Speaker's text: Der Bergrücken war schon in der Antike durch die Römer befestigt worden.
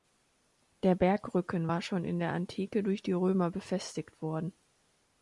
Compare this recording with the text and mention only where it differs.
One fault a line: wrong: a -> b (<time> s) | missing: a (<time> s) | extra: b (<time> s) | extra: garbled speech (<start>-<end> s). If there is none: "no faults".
no faults